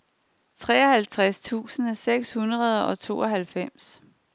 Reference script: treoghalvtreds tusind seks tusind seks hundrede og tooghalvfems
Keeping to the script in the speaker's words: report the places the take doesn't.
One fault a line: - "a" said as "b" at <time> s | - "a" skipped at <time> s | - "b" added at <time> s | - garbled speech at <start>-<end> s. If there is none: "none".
- "tusind seks" skipped at 2.3 s